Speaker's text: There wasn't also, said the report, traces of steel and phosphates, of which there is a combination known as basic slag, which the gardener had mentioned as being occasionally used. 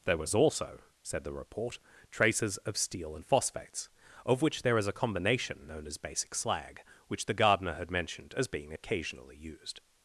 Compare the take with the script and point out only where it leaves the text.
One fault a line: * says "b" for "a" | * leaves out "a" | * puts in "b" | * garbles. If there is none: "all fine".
* says "was" for "wasn't"